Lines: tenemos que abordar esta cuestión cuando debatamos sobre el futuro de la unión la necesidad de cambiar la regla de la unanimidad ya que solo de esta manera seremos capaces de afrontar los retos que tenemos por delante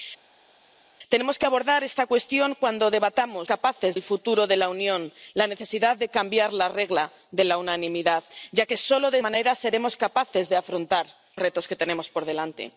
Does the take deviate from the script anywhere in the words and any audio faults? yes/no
yes